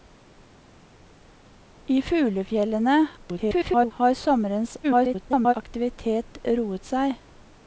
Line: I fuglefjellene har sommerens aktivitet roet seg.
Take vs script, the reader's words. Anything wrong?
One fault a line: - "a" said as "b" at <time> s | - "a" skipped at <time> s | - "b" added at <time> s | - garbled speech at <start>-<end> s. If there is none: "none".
- garbled speech at 3.2-3.9 s
- garbled speech at 4.8-5.5 s